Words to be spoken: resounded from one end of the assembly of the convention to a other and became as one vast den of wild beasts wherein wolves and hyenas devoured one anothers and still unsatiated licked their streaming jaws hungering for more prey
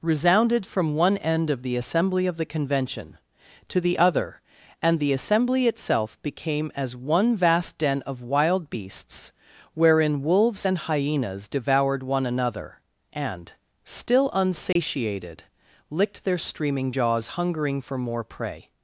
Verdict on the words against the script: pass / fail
fail